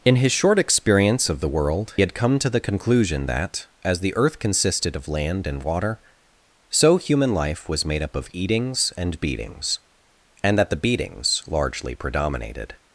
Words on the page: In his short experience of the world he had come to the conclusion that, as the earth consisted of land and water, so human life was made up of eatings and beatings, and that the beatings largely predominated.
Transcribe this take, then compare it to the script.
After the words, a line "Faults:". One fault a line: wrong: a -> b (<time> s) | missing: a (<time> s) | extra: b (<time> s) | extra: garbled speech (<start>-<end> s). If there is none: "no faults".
In his short experience of the world had come to the conclusion that, as the earth consisted of land and water, so human life was made up of eatings and beatings, and that the beatings largely predominated.
Faults:
missing: he (1.9 s)